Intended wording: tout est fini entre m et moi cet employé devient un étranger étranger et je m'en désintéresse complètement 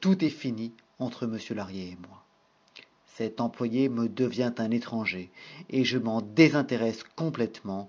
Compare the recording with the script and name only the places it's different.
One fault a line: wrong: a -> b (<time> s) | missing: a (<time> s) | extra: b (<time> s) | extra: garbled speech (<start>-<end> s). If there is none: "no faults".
extra: lahrier (1.5 s)
extra: me (3.9 s)
missing: étranger (5.3 s)